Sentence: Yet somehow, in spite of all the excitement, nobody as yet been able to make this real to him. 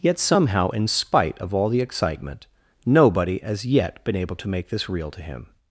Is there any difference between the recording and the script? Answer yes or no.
no